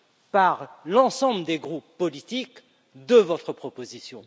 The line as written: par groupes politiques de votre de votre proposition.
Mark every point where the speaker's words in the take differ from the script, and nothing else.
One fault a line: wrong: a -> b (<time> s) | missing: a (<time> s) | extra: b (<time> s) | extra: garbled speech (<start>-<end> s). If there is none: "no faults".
extra: l'ensemble des (0.8 s)
missing: de votre (3.5 s)